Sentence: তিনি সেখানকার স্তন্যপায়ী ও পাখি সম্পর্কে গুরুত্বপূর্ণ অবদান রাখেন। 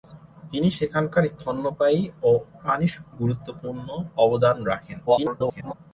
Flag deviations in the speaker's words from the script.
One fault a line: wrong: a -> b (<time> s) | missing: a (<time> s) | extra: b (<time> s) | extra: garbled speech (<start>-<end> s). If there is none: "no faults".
missing: পাখি সম্পর্কে (2.3 s)
extra: garbled speech (5.1-5.7 s)